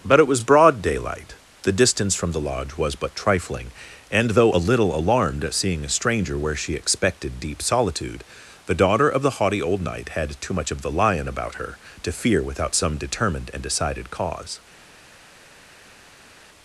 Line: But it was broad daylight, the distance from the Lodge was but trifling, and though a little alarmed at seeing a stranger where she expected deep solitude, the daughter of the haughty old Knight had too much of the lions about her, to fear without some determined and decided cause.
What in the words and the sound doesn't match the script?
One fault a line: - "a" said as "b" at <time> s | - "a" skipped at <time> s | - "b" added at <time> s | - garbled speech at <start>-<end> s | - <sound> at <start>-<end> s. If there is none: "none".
- "lions" said as "lion" at 10.9 s